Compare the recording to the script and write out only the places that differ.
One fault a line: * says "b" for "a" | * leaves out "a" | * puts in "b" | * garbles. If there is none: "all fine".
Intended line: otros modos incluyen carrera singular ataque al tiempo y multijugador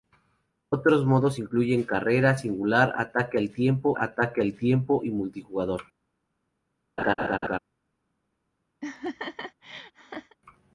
* puts in "ataque al tiempo"